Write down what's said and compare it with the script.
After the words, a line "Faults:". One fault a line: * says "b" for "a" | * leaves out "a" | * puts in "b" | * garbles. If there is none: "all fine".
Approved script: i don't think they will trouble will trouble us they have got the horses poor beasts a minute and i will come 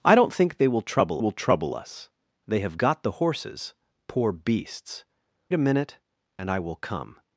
i don't think they will trouble will trouble us they have got the horses poor beasts a minute and i will come
Faults:
all fine